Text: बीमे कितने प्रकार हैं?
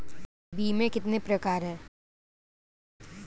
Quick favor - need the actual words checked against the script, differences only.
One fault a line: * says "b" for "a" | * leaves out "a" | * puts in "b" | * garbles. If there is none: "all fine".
all fine